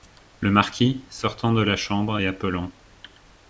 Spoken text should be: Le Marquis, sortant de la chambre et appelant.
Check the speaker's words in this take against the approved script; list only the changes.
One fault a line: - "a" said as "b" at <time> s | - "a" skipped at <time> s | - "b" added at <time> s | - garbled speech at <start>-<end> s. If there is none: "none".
none